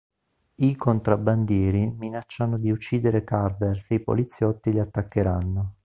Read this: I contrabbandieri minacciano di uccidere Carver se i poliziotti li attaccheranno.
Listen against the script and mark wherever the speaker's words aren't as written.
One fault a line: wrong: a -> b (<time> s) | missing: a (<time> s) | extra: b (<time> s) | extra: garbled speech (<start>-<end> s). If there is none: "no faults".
no faults